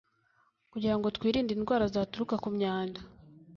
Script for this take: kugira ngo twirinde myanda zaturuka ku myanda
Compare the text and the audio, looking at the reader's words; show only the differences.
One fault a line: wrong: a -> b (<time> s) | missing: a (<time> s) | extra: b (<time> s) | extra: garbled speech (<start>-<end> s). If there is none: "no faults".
wrong: myanda -> indwara (1.5 s)